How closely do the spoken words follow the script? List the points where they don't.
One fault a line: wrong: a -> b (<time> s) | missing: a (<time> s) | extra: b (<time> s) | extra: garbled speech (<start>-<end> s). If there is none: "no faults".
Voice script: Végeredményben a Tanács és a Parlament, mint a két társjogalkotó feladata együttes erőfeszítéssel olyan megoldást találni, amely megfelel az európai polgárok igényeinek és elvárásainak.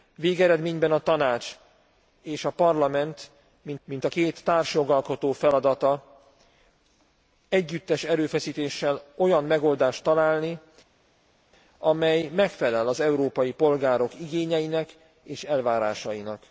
extra: mint (3.8 s)